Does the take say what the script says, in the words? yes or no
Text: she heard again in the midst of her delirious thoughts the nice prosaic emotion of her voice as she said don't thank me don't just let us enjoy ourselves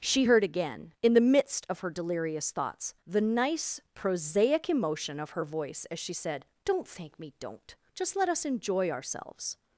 yes